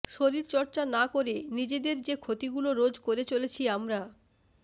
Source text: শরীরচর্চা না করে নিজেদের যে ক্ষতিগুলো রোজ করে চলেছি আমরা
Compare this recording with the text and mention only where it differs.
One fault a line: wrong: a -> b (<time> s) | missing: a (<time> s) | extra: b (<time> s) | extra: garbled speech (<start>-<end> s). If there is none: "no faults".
no faults